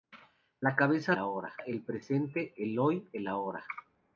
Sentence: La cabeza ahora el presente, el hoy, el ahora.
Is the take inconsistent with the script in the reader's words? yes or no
no